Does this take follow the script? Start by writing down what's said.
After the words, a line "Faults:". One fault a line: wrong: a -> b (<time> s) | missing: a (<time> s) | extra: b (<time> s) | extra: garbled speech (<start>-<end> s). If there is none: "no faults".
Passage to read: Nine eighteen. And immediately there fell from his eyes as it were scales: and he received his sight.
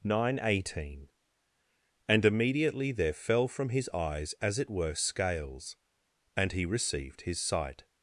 Nine eighteen. And immediately there fell from his eyes as it were scales: and he received his sight.
Faults:
no faults